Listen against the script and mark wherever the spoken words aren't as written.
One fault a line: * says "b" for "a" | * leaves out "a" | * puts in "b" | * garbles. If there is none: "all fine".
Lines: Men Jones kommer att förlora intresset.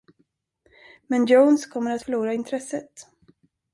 all fine